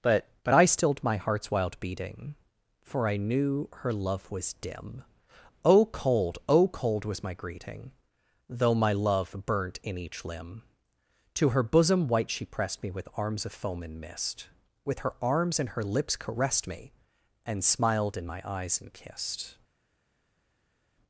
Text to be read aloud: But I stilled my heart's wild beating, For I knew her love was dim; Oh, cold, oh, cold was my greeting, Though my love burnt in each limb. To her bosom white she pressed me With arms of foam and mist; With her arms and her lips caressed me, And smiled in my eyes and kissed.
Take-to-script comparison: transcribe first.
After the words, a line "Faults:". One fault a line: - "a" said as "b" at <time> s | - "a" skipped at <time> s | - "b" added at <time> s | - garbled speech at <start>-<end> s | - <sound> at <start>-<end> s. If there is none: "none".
But but I stilled my heart's wild beating, For I knew her love was dim; Oh, cold, oh, cold was my greeting, Though my love burnt in each limb. To her bosom white she pressed me With arms of foam and mist; With her arms and her lips caressed me, And smiled in my eyes and kissed.
Faults:
- "but" added at 0.4 s